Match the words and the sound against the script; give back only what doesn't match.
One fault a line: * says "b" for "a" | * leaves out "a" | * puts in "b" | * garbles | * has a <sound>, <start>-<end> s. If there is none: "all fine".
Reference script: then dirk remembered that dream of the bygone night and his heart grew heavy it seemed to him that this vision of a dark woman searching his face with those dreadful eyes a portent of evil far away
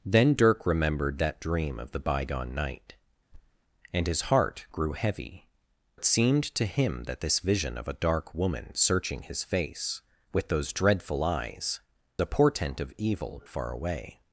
* has a thud, 3.3-3.6 s